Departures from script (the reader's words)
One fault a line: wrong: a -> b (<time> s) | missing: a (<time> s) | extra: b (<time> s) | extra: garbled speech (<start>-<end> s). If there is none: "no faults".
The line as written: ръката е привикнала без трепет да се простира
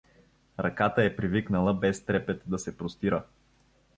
no faults